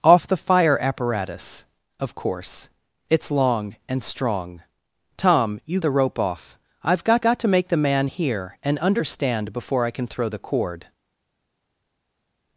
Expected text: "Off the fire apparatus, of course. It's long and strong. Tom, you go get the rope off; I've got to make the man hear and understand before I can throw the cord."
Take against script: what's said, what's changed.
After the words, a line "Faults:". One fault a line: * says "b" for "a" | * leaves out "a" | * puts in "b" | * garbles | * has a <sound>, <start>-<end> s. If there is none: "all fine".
"Off the fire apparatus, of course. It's long and strong. Tom, you the rope off; I've got got to make the man hear and understand before I can throw the cord."
Faults:
* leaves out "go get"
* puts in "got"